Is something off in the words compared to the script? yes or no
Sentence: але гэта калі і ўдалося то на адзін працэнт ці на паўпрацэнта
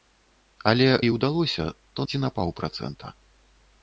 yes